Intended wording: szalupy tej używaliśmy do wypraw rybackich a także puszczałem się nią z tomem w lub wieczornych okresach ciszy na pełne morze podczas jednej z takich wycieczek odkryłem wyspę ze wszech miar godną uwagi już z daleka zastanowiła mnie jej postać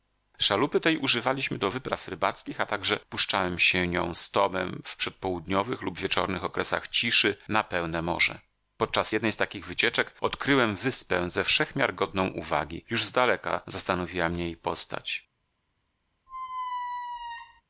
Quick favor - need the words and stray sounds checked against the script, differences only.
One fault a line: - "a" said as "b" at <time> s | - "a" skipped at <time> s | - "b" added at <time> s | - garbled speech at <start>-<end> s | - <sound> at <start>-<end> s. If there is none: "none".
- "przedpołudniowych" added at 5.0 s
- squeak at 16.3-17.6 s